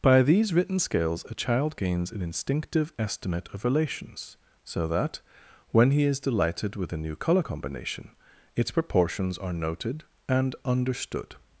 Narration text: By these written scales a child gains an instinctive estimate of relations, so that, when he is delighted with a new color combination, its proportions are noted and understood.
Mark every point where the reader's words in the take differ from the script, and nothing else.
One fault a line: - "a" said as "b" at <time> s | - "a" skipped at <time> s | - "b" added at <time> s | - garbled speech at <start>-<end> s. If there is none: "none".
none